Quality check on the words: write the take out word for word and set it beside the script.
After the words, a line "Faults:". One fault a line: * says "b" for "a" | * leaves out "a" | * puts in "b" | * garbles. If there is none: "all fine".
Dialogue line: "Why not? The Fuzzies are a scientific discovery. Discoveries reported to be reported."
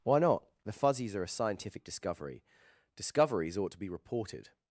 "Why not? The Fuzzies are a scientific discovery. Discoveries ought to be reported."
Faults:
* says "ought" for "reported"